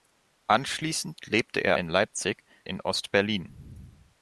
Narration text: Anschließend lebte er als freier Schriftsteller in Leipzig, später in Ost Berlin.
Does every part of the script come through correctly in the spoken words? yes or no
no